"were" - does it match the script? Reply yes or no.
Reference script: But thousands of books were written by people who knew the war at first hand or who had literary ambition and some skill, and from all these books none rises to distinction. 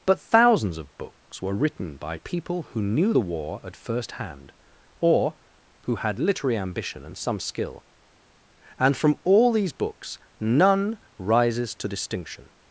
yes